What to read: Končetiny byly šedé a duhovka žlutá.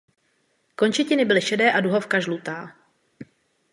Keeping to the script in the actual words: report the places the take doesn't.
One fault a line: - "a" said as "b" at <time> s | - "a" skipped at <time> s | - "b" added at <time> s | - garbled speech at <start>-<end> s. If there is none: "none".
none